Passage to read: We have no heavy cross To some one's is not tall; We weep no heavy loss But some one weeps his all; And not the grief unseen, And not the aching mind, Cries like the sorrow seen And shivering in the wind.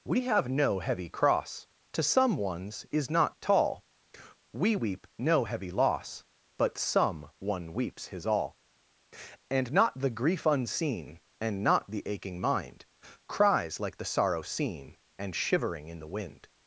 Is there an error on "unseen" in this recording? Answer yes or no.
no